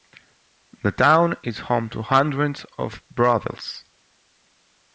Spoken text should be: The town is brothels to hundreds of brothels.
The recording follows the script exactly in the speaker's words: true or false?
false